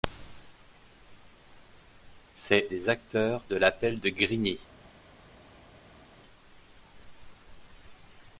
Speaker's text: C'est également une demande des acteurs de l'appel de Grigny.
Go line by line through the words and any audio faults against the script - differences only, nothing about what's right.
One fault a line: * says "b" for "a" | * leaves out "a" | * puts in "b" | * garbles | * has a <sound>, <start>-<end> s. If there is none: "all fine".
* leaves out "également une demande"